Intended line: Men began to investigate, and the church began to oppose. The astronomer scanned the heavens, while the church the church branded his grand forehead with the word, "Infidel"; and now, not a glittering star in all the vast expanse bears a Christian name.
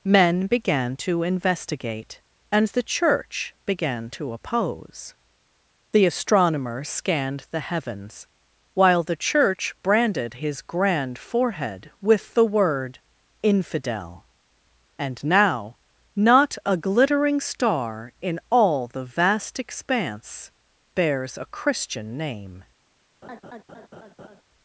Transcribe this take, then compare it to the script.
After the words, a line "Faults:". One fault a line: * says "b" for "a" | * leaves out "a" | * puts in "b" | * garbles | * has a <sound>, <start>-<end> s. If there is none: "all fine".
Men began to investigate, and the church began to oppose. The astronomer scanned the heavens, while the church branded his grand forehead with the word, "Infidel"; and now, not a glittering star in all the vast expanse bears a Christian name.
Faults:
* leaves out "the church"
* has a laugh, 23.2-24.4 s